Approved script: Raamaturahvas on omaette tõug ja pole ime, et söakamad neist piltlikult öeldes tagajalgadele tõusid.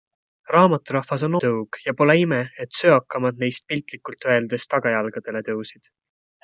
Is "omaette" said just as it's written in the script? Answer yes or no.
no